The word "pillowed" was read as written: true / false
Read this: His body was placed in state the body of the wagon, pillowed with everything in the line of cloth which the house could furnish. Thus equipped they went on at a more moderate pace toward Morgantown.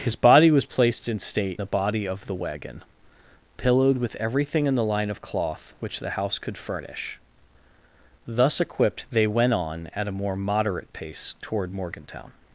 true